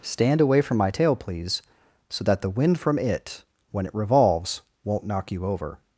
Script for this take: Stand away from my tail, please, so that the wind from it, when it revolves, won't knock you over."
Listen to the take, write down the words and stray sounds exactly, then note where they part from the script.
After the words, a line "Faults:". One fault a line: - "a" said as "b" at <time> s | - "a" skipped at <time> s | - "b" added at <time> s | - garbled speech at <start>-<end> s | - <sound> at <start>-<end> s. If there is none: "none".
Stand away from my tail, please, so that the wind from it, when it revolves, won't knock you over."
Faults:
none